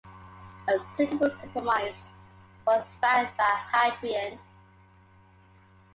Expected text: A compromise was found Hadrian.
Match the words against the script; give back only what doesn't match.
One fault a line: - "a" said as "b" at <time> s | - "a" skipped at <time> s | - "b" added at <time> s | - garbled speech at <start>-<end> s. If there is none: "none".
- "suitable" added at 1.0 s
- "by" added at 3.4 s